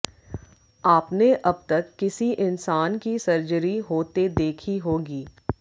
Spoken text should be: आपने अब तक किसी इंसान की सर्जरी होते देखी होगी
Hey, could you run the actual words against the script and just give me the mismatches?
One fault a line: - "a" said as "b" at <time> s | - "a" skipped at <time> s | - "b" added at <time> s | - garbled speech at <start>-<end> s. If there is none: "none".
none